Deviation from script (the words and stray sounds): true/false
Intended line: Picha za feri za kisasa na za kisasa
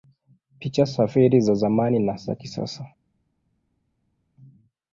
true